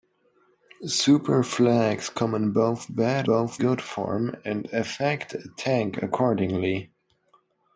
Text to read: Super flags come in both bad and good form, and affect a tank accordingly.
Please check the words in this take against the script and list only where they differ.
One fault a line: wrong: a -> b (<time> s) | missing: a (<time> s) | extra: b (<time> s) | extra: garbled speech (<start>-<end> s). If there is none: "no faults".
wrong: and -> both (3.2 s)